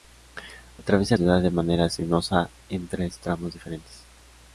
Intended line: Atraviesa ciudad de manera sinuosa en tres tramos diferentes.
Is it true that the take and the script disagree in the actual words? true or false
false